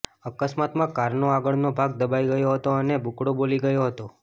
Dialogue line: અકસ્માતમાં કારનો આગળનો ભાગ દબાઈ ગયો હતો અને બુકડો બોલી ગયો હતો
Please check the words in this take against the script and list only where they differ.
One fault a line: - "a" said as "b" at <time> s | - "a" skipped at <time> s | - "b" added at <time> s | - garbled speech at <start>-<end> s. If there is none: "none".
none